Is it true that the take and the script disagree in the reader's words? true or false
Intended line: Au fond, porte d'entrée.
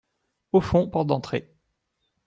false